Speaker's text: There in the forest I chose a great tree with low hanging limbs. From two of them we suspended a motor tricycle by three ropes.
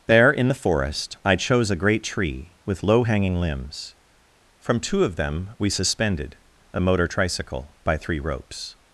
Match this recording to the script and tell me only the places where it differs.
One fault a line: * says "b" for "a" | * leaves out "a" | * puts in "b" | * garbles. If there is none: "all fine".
all fine